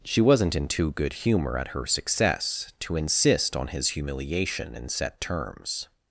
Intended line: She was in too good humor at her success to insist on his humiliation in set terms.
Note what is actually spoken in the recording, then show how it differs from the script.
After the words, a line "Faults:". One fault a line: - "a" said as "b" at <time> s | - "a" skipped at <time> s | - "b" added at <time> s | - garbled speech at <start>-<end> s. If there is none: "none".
She wasn't in too good humor at her success to insist on his humiliation in set terms.
Faults:
- "was" said as "wasn't" at 0.2 s